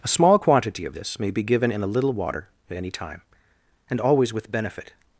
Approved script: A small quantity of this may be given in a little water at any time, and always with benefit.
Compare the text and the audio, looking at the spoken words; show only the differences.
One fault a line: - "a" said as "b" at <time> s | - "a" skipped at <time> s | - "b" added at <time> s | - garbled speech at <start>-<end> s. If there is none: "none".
none